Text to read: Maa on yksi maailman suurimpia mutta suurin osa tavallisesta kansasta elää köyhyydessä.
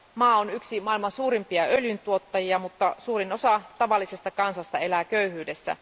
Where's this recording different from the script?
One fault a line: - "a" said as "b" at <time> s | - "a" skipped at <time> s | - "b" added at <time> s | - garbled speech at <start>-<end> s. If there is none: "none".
- "öljyntuottajia" added at 1.6 s